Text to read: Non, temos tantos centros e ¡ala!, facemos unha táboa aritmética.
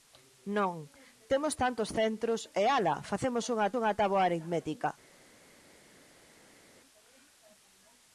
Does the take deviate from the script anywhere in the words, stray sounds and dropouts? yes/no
yes